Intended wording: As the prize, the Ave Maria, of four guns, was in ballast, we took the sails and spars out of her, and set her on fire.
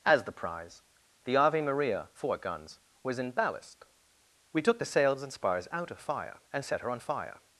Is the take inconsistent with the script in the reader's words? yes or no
yes